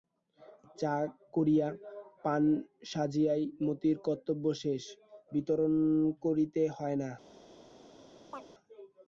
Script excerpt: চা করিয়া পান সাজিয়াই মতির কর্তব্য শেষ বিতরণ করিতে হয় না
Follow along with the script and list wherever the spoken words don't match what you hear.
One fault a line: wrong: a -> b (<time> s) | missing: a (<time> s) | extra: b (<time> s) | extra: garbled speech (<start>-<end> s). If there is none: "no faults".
no faults